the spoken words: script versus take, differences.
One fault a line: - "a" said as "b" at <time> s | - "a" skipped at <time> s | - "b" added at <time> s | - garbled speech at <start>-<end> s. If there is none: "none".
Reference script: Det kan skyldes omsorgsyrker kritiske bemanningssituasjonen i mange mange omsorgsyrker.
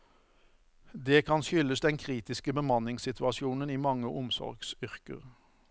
- "omsorgsyrker" said as "den" at 1.8 s
- "mange" skipped at 4.1 s